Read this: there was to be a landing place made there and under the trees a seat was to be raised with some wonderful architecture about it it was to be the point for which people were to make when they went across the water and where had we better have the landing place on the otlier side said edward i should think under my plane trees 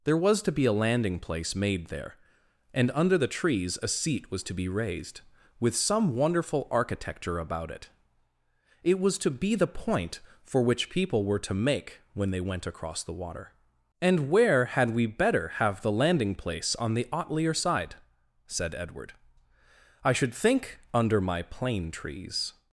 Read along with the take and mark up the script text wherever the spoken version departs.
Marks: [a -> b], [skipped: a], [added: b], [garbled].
there was to be a landing place made there and under the trees a seat was to be raised with some wonderful architecture about it it was to be the point for which people were to make when they went across the water and where had we better have the landing place on the otlier side said edward i should think under my plane trees